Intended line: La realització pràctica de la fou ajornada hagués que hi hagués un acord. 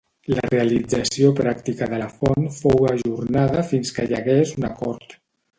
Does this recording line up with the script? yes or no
no